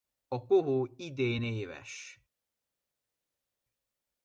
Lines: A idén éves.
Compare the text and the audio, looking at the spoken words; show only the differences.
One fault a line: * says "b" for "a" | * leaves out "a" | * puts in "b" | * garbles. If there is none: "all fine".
* puts in "kohó"